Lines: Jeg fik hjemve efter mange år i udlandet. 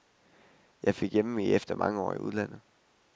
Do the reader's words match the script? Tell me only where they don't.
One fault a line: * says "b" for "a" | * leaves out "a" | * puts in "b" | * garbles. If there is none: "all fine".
all fine